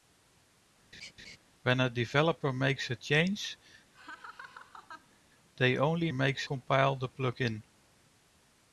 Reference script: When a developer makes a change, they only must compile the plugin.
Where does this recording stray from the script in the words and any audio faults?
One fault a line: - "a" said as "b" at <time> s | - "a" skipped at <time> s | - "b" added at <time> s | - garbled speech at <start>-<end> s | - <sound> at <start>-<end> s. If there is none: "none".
- laugh at 0.9-1.4 s
- laugh at 3.9-5.2 s
- "must" said as "makes" at 6.1 s